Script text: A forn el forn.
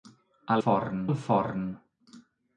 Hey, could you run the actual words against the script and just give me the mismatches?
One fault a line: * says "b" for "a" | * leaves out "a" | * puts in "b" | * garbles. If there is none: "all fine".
all fine